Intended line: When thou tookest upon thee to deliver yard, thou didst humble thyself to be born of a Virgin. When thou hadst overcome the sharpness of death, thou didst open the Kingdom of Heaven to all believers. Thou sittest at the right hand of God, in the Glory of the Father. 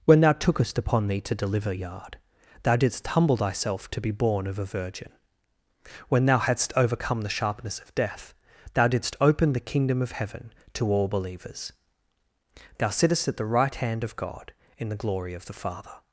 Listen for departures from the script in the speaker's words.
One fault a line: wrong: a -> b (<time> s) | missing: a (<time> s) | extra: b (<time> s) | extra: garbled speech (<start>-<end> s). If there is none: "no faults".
no faults